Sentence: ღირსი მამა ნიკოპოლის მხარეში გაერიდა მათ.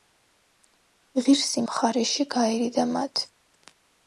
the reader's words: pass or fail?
fail